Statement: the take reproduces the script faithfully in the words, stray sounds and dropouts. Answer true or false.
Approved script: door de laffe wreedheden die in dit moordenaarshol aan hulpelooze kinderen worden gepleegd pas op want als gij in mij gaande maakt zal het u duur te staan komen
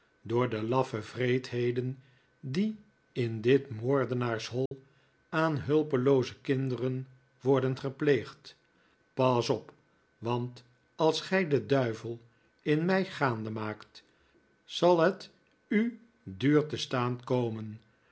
false